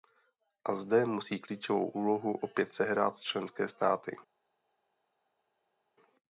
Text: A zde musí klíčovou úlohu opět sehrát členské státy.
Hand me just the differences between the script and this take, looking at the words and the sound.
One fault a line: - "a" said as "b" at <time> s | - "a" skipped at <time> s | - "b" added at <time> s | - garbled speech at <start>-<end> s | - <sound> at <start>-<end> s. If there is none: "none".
none